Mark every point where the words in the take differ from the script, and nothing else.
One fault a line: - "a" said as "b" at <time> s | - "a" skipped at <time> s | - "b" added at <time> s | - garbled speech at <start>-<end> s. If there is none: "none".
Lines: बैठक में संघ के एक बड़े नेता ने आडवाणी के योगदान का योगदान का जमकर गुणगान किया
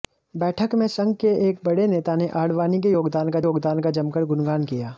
none